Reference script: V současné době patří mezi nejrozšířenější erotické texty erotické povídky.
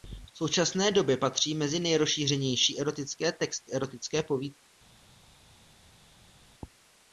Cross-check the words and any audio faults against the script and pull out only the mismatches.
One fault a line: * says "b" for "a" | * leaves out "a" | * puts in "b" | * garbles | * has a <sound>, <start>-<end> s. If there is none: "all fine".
all fine